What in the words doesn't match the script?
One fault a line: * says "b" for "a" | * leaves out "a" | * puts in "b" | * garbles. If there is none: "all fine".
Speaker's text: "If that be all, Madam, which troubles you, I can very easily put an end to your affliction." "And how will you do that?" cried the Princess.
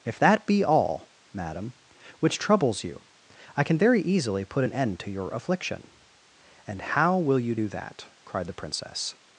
all fine